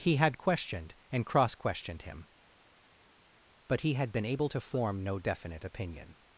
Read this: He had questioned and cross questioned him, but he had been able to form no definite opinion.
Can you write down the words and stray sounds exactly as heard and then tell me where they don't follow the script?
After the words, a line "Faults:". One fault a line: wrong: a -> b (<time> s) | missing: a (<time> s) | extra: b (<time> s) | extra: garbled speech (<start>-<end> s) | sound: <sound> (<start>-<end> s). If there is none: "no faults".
He had questioned and cross questioned him, but he had been able to form no definite opinion.
Faults:
no faults